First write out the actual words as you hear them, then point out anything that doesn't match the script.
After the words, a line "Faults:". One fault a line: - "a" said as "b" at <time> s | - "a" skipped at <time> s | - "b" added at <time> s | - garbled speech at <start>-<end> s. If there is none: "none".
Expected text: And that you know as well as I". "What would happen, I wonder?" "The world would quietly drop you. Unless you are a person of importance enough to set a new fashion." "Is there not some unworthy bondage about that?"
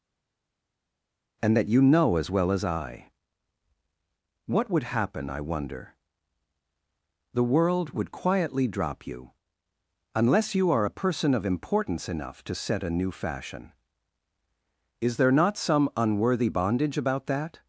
And that you know as well as I". "What would happen, I wonder?" "The world would quietly drop you. Unless you are a person of importance enough to set a new fashion." "Is there not some unworthy bondage about that?"
Faults:
none